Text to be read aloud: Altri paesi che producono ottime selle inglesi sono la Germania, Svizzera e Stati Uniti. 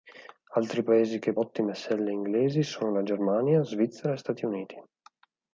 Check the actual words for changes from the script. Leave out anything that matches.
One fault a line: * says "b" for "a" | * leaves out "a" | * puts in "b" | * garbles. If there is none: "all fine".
* leaves out "producono"